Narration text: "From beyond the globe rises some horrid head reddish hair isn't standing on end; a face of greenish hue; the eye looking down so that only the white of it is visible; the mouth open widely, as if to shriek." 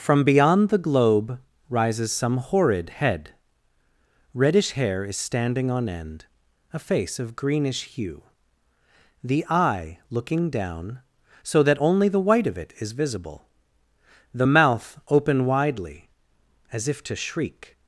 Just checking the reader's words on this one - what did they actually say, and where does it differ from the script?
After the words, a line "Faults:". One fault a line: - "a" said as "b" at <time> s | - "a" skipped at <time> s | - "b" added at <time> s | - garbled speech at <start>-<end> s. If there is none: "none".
"From beyond the globe rises some horrid head reddish hair is standing on end; a face of greenish hue; the eye looking down so that only the white of it is visible; the mouth open widely, as if to shriek."
Faults:
- "isn't" said as "is" at 5.0 s